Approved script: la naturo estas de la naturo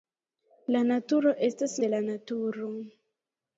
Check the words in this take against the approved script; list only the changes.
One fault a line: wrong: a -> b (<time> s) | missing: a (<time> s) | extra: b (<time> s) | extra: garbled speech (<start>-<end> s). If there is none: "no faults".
no faults